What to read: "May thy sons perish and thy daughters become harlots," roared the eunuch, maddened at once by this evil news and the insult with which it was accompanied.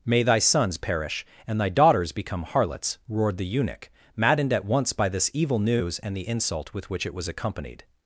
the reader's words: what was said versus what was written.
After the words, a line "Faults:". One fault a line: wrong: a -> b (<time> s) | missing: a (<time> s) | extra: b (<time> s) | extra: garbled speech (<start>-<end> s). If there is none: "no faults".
"May thy sons perish and thy daughters become harlots," roared the eunuch, maddened at once by this evil news and the insult with which it was accompanied.
Faults:
no faults